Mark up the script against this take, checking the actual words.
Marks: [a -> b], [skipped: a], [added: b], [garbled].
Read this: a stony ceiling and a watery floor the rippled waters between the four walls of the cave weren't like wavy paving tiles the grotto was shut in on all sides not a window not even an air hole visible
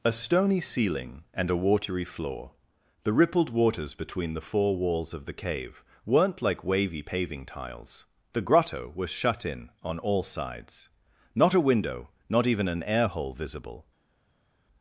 a stony ceiling and a watery floor the rippled waters between the four walls of the cave weren't like wavy paving tiles the grotto was shut in on all sides not a window not even an air hole visible